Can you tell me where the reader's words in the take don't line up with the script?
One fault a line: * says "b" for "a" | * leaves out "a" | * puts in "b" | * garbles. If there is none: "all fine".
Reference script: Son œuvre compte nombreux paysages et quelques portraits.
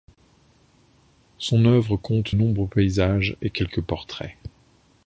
all fine